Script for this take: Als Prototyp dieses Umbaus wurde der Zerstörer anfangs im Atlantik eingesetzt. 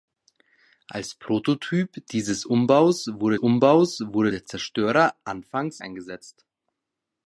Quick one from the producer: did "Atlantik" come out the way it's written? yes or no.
no